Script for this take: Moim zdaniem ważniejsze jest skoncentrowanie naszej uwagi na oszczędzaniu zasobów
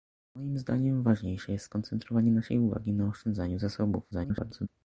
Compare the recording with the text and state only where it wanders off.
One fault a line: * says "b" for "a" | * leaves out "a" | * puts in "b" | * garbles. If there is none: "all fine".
* garbles